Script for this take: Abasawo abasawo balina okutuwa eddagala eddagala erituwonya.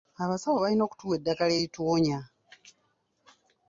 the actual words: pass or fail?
fail